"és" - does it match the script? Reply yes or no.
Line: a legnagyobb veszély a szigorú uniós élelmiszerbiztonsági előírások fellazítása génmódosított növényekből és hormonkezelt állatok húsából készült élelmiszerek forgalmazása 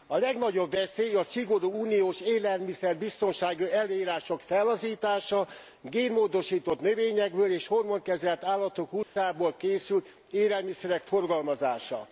yes